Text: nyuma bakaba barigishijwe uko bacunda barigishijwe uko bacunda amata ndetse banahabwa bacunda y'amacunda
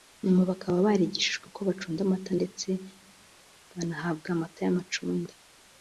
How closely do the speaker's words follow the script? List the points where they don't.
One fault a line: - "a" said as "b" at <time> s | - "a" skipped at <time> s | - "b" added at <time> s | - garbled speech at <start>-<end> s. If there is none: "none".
- "barigishijwe uko bacunda" skipped at 2.0 s
- "bacunda" said as "amata" at 4.4 s